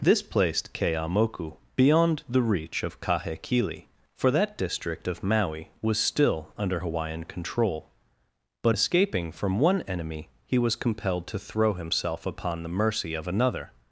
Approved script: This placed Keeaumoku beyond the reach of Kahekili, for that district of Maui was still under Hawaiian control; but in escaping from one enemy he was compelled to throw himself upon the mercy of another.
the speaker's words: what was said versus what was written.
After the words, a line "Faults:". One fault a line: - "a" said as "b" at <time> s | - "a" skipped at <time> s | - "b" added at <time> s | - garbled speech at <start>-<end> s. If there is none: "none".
This placed Keeaumoku beyond the reach of Kahekili, for that district of Maui was still under Hawaiian control; but escaping from one enemy he was compelled to throw himself upon the mercy of another.
Faults:
- "in" skipped at 8.8 s